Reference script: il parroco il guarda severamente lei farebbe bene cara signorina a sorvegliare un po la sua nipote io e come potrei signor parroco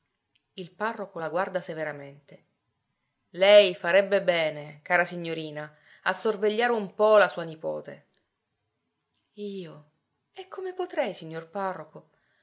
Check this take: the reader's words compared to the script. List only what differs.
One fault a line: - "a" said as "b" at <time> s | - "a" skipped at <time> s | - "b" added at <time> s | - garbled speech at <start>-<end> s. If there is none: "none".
- "il" said as "la" at 1.2 s